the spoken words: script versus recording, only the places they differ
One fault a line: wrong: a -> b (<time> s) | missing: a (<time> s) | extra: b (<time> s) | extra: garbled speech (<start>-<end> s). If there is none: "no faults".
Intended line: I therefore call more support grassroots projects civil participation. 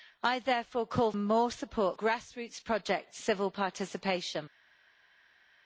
no faults